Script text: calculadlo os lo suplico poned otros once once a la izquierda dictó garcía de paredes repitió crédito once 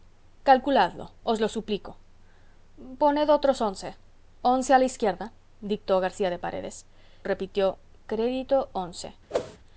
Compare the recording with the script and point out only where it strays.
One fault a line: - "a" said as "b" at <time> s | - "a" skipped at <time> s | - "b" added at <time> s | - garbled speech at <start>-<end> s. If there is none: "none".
none